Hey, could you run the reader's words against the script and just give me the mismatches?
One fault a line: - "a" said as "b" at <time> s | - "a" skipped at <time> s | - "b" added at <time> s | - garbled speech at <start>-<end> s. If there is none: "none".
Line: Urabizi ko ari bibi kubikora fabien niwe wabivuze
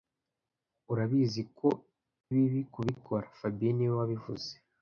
- "ari" skipped at 1.7 s